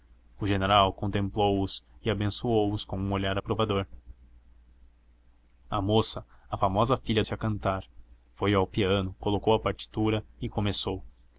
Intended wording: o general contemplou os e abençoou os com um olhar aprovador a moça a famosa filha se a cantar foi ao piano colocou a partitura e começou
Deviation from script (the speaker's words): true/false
false